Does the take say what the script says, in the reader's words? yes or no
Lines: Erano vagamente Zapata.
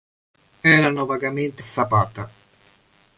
yes